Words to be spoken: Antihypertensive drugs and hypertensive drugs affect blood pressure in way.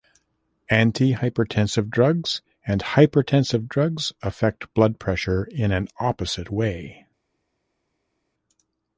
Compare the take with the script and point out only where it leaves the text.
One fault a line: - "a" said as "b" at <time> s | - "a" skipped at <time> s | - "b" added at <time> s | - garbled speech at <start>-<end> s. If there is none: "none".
- "an opposite" added at 5.7 s